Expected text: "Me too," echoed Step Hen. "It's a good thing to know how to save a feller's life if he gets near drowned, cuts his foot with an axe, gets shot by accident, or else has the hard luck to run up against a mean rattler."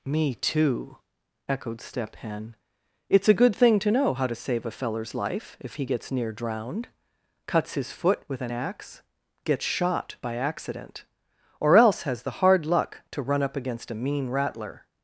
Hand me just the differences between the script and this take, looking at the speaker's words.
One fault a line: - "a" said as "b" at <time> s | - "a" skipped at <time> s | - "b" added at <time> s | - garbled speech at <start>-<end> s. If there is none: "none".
none